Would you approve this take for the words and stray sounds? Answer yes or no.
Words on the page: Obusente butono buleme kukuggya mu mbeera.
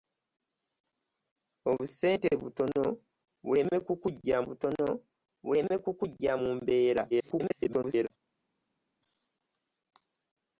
no